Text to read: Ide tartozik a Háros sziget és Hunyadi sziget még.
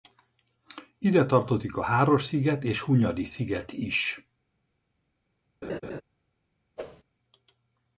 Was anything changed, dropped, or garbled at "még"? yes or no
yes